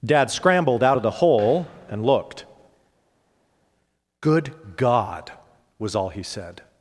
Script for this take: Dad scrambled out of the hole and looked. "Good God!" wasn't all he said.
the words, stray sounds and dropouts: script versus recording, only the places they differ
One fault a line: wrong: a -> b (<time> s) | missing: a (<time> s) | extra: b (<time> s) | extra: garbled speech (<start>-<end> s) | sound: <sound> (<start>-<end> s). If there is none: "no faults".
wrong: wasn't -> was (5.8 s)